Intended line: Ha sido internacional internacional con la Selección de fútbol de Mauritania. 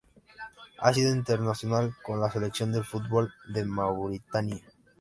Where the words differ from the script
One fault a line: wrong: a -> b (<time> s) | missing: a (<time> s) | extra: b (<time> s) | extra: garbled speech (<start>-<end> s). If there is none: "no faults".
missing: internacional (1.9 s)